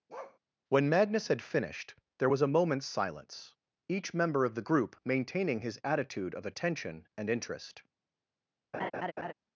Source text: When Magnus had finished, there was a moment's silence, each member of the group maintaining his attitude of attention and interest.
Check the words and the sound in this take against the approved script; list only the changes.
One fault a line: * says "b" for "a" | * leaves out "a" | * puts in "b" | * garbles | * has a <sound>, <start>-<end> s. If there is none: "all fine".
* has a bark, 0.1-0.4 s
* has a laugh, 8.7-9.3 s